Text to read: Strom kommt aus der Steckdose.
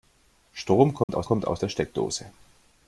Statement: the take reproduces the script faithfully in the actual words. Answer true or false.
false